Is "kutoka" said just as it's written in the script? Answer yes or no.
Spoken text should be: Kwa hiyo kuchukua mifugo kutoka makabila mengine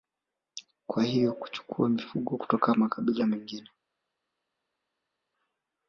yes